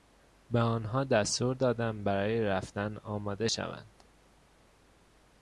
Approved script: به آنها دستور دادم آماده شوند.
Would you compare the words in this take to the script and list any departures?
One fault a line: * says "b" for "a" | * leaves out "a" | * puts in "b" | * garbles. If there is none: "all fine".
* puts in "برای رفتن"